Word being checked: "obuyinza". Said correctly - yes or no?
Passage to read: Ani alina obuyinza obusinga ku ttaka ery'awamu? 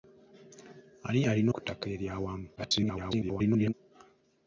no